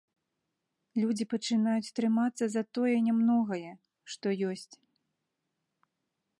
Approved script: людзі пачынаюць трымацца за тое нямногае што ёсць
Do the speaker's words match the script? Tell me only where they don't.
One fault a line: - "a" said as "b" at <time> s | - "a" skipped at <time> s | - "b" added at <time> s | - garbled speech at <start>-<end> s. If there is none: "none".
none